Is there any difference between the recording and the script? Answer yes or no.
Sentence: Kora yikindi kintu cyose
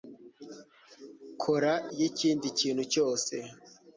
no